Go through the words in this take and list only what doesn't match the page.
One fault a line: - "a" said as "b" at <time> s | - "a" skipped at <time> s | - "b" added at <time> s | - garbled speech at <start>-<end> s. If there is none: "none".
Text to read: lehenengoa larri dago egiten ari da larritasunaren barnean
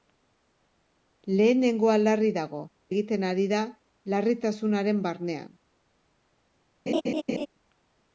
none